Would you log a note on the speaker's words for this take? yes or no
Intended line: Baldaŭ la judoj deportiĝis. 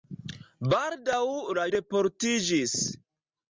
yes